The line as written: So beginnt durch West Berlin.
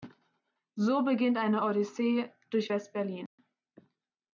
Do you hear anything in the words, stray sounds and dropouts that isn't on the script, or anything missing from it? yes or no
yes